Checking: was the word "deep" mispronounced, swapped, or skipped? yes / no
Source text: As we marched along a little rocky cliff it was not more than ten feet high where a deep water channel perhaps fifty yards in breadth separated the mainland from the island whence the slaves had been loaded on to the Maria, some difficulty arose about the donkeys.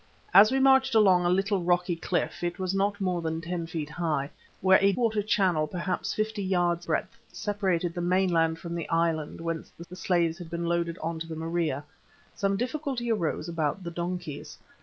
yes